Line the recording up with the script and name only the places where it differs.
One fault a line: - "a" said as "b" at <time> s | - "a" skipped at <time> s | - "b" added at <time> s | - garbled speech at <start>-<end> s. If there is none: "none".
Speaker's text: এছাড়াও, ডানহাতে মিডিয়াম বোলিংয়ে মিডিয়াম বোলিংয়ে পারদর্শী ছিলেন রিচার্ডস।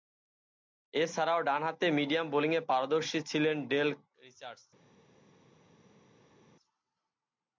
- "মিডিয়াম বোলিংয়ে" skipped at 2.6 s
- "ডেল" added at 3.7 s